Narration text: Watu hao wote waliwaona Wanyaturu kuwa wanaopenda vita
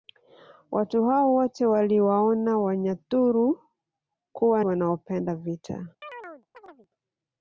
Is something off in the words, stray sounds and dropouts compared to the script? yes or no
yes